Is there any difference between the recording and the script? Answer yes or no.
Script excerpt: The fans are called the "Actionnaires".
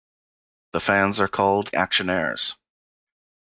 yes